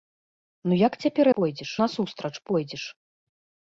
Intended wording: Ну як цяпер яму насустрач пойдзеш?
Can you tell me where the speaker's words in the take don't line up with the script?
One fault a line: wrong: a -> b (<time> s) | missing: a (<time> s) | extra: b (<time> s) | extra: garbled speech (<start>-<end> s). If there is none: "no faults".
wrong: яму -> пойдзеш (1.4 s)